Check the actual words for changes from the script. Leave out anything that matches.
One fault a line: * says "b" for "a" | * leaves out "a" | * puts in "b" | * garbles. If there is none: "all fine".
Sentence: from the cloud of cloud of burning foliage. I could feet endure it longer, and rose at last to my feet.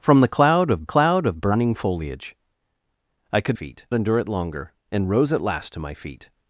all fine